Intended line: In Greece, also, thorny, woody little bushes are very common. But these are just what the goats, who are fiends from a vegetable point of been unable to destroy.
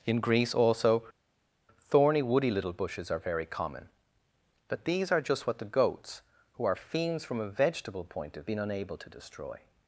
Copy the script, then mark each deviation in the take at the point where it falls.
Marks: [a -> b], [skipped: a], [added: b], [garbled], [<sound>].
In Greece, also, thorny, woody little bushes are very common. But these are just what the goats, who are fiends from a vegetable point of been unable to destroy.